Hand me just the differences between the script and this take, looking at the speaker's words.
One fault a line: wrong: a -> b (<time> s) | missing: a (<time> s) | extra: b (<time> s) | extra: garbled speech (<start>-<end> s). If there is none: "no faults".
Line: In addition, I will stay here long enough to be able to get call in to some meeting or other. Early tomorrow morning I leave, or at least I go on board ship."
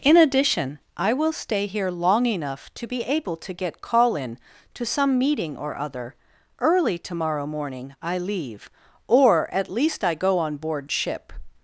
no faults